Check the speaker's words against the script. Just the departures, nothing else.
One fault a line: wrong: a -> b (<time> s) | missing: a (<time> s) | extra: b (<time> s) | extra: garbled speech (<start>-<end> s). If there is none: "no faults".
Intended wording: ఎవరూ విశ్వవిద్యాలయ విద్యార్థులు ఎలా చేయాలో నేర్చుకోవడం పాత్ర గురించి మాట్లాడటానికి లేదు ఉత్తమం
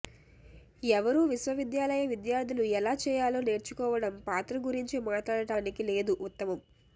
no faults